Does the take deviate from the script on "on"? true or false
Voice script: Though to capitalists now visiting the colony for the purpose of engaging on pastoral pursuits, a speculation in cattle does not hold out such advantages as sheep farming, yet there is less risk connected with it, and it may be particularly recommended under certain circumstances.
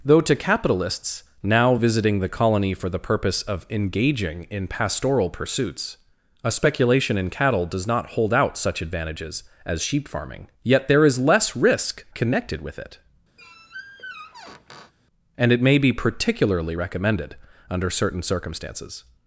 true